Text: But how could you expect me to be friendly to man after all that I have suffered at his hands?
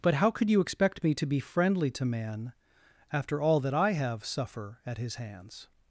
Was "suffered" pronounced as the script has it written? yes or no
no